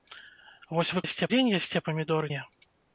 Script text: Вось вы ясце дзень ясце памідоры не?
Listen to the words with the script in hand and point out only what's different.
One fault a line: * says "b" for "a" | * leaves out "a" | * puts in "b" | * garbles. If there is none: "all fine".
all fine